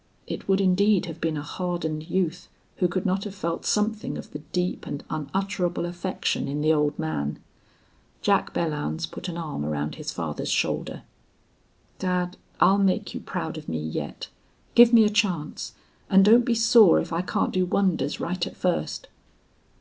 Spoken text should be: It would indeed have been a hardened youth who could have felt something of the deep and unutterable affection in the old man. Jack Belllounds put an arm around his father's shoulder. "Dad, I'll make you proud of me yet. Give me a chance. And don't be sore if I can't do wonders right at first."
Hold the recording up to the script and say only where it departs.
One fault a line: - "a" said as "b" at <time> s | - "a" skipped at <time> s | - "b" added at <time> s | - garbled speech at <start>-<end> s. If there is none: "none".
- "not" added at 3.0 s